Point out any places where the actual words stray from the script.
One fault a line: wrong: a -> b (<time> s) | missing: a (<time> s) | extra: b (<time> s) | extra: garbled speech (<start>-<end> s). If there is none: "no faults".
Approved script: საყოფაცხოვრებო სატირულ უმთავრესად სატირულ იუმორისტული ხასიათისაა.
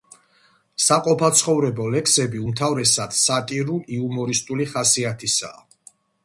wrong: სატირულ -> ლექსები (1.9 s)